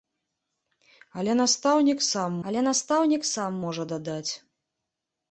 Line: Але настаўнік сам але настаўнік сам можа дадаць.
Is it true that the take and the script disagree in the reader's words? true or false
false